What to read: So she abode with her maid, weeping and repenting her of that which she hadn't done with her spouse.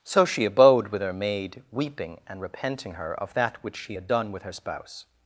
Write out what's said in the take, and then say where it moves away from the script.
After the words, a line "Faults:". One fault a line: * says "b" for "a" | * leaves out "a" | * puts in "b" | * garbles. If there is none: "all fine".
So she abode with her maid, weeping and repenting her of that which she had done with her spouse.
Faults:
* says "had" for "hadn't"